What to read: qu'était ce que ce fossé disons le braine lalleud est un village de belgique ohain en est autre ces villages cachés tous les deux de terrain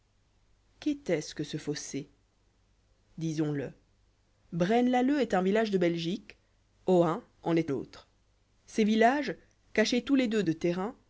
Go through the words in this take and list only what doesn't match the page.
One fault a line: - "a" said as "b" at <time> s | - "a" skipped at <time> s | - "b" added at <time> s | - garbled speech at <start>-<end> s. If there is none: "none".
none